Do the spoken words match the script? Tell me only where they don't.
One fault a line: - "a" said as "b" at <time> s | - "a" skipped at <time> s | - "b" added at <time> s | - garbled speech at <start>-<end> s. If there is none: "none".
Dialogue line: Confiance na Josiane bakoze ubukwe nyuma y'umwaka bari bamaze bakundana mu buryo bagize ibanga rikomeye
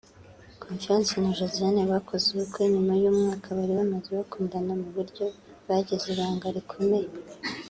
none